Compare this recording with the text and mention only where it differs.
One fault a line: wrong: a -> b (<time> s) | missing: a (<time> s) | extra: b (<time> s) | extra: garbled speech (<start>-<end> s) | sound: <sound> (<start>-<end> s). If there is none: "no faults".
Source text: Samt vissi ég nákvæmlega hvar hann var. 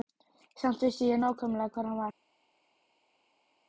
no faults